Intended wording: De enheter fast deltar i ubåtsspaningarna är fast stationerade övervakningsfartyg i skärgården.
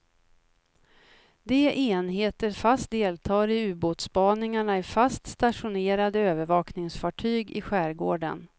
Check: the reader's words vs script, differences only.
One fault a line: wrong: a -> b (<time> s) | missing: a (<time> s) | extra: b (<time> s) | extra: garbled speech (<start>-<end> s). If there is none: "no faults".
no faults